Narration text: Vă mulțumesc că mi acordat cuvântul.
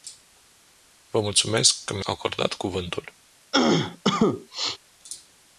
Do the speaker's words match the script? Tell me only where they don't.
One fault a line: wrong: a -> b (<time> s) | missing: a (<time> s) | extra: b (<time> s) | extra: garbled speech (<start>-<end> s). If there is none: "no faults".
no faults